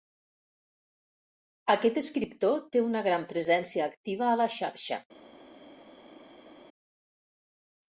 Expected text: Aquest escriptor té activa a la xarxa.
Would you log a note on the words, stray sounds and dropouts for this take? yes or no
yes